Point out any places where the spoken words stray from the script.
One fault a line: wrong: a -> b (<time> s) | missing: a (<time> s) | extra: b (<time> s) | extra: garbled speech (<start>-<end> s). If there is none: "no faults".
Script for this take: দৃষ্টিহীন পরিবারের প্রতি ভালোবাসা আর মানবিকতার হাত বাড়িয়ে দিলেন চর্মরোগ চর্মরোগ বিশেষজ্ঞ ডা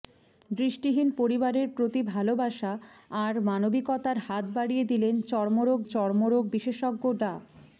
no faults